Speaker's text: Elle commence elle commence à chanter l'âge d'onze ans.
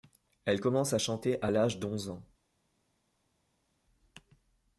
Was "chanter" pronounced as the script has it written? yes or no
no